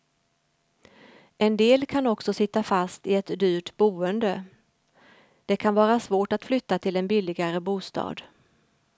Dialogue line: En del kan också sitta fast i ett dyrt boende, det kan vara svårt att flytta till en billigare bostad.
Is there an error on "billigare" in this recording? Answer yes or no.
no